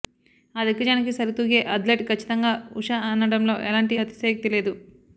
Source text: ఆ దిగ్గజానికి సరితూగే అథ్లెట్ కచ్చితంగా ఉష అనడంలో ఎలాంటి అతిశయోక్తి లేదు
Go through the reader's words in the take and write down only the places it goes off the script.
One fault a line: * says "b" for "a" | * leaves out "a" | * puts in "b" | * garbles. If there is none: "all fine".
all fine